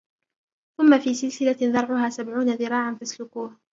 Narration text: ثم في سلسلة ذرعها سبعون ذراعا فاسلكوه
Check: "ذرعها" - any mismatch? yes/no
no